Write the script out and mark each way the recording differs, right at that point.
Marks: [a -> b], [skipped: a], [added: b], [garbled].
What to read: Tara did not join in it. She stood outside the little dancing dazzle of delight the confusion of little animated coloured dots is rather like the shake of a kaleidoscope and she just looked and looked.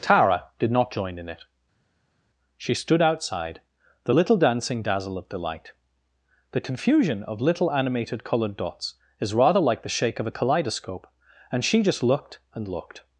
Tara did not join in it. She stood outside the little dancing dazzle of delight the confusion of little animated coloured dots is rather like the shake of a kaleidoscope and she just looked and looked.